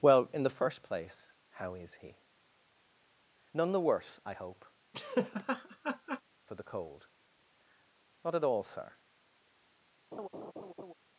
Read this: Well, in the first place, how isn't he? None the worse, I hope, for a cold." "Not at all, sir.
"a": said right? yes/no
no